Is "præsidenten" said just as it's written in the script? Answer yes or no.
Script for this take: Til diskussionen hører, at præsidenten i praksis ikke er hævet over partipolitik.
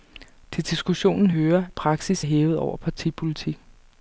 no